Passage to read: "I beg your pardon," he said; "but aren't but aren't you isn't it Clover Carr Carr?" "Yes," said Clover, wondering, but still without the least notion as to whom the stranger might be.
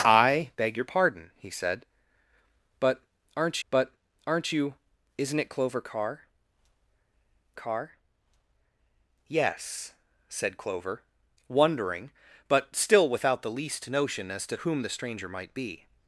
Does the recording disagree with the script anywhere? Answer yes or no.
no